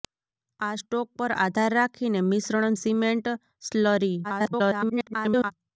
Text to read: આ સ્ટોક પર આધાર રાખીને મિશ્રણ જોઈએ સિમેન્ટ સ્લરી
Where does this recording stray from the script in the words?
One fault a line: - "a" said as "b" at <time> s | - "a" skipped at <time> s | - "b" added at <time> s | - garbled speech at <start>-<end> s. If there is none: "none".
- "જોઈએ" skipped at 2.8 s
- garbled speech at 4.2-5.5 s